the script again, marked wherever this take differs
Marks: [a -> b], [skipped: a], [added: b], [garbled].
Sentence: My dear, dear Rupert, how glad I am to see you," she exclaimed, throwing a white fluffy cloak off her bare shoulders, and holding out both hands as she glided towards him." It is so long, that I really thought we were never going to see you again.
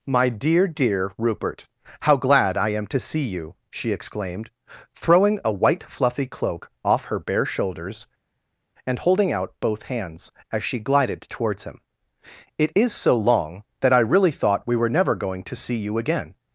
My dear, dear Rupert, how glad I am to see you," she exclaimed, throwing a white fluffy cloak off her bare shoulders, and holding out both hands as she glided towards him." It is so long, that I really thought we were never going to see you again.